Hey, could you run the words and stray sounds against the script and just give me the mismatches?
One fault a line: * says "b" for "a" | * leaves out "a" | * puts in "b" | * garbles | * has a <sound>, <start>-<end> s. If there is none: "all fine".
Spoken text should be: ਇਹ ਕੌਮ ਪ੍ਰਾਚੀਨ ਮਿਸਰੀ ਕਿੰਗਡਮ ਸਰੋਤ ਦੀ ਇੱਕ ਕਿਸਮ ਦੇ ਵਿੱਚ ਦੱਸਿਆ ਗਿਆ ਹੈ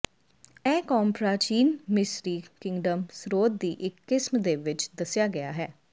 all fine